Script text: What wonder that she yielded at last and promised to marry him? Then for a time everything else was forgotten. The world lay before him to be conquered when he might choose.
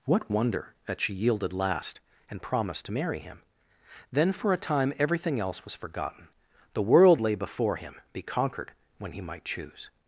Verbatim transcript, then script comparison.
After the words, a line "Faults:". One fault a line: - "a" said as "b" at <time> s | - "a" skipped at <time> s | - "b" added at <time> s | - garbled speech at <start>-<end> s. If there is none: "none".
What wonder that she yielded last and promised to marry him? Then for a time everything else was forgotten. The world lay before him be conquered when he might choose.
Faults:
- "at" skipped at 1.5 s
- "to" skipped at 7.9 s